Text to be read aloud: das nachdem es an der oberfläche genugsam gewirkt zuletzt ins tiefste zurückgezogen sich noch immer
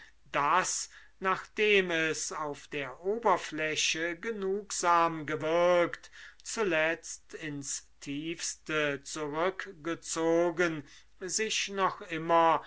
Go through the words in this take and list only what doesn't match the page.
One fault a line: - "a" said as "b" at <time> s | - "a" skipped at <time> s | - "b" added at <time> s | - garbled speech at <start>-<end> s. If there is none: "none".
- "an" said as "auf" at 2.3 s